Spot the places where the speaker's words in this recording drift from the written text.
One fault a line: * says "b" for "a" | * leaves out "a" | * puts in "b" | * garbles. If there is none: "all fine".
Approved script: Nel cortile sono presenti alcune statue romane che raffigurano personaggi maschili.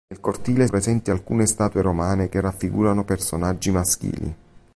* leaves out "sono"